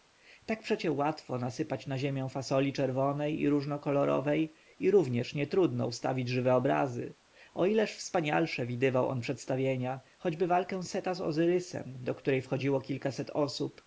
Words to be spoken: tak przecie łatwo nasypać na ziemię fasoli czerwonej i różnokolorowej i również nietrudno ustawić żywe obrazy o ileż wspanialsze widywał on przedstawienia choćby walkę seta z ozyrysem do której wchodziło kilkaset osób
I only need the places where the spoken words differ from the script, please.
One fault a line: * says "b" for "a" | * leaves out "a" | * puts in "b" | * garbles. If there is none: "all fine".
all fine